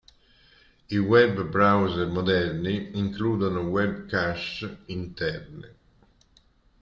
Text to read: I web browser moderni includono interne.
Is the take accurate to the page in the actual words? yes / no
no